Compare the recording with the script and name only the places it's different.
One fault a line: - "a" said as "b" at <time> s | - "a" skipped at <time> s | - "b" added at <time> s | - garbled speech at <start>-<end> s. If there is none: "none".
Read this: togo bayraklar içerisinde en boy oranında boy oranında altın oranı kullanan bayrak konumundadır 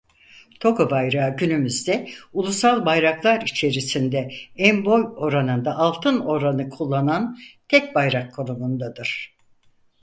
- "bayrağı günümüzde ulusal" added at 0.9 s
- "boy oranında" skipped at 5.8 s
- "tek" added at 7.7 s